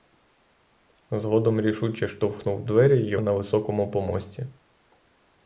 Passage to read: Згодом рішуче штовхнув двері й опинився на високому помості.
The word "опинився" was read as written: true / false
false